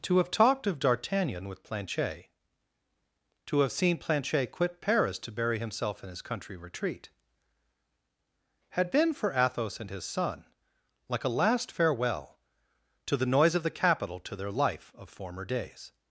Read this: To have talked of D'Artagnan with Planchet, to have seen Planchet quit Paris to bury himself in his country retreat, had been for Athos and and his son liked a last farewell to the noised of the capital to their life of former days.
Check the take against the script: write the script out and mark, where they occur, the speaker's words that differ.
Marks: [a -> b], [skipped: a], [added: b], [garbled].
To have talked of D'Artagnan with Planchet, to have seen Planchet quit Paris to bury himself in his country retreat, had been for Athos and [skipped: and] his son [liked -> like] a last farewell to the [noised -> noise] of the capital to their life of former days.